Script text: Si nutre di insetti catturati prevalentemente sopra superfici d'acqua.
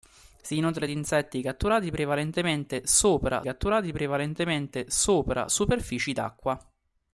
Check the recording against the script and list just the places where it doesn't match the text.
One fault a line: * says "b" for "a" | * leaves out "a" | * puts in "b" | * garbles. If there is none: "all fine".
* puts in "catturati prevalentemente sopra"